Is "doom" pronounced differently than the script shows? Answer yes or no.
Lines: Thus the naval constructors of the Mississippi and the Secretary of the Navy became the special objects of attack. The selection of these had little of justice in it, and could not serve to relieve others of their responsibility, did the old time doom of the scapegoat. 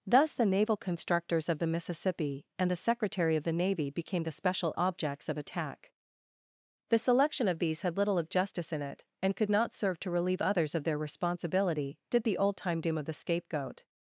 no